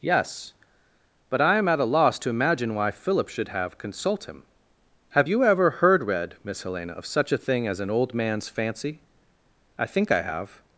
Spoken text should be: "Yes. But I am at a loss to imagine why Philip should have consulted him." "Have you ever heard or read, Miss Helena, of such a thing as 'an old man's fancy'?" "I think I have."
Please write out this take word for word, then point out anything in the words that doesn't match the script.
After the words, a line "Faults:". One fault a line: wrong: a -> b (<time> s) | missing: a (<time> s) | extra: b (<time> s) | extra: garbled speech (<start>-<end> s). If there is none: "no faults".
"Yes. But I am at a loss to imagine why Philip should have consult him." "Have you ever heard read, Miss Helena, of such a thing as 'an old man's fancy'?" "I think I have."
Faults:
wrong: consulted -> consult (3.8 s)
missing: or (6.0 s)